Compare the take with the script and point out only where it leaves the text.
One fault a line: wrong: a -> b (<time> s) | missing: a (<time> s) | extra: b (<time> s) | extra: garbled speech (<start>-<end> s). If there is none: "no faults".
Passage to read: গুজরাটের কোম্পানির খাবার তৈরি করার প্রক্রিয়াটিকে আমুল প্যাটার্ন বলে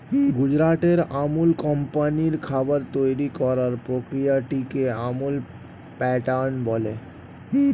extra: আমুল (1.2 s)